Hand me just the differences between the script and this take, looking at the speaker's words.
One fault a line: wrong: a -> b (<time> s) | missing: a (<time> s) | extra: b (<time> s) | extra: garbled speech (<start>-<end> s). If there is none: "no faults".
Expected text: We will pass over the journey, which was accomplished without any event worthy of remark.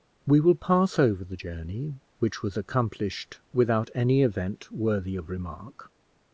no faults